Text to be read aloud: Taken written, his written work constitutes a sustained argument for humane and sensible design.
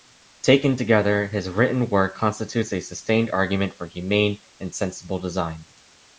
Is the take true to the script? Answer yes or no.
no